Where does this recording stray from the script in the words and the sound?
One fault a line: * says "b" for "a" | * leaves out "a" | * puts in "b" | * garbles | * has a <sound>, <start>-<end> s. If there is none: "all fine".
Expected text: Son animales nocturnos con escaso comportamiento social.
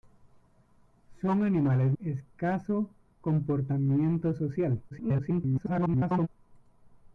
* leaves out "nocturnos con"
* garbles